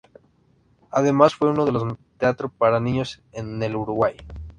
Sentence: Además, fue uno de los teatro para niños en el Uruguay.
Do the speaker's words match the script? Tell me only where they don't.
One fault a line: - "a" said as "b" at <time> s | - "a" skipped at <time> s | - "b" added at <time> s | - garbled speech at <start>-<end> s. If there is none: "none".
none